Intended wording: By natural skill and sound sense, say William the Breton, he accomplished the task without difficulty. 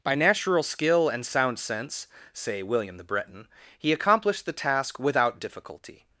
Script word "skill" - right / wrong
right